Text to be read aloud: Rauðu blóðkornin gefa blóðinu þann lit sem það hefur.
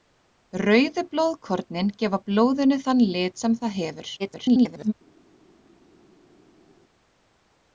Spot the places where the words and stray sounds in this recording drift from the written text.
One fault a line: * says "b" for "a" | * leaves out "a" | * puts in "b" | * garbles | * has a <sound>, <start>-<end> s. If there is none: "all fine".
* garbles